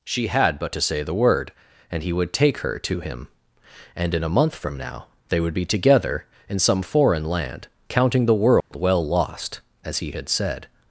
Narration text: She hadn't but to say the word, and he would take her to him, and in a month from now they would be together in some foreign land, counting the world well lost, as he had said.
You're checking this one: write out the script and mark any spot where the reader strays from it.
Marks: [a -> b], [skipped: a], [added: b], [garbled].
She [hadn't -> had] but to say the word, and he would take her to him, and in a month from now they would be together in some foreign land, counting the world well lost, as he had said.